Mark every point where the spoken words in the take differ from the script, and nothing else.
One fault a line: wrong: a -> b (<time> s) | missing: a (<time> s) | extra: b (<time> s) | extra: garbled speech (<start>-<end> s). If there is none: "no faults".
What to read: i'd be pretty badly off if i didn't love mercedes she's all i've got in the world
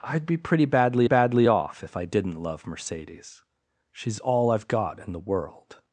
extra: badly (1.0 s)